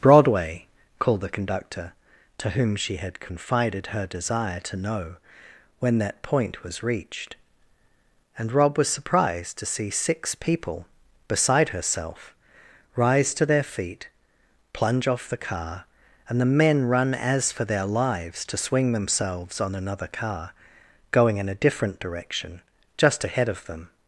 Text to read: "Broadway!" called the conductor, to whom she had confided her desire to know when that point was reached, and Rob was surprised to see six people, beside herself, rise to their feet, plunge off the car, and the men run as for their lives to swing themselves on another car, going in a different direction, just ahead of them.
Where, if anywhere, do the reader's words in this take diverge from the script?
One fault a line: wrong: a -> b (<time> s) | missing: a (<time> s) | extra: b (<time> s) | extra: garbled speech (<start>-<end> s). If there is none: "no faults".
no faults